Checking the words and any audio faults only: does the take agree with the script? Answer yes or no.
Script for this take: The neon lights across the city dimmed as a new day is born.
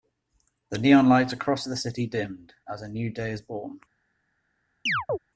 no